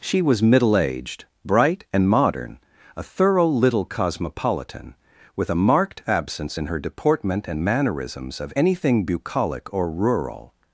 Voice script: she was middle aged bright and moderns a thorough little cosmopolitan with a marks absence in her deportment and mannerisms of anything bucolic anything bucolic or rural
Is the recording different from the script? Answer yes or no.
yes